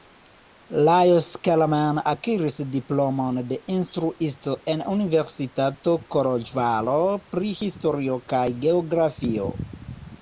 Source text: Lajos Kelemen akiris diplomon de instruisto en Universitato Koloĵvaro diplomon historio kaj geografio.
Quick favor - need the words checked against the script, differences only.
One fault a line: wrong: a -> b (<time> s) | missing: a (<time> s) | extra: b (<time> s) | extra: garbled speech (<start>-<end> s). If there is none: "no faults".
wrong: diplomon -> pri (7.3 s)